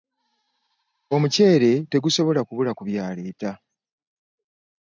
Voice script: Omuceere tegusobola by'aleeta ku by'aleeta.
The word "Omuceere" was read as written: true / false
true